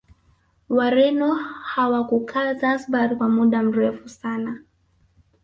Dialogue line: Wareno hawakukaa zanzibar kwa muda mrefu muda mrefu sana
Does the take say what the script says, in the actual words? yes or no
no